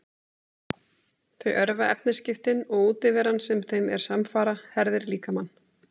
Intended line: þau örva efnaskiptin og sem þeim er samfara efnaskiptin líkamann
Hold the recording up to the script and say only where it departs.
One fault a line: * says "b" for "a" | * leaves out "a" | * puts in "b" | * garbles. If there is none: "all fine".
* puts in "útiveran"
* says "herðir" for "efnaskiptin"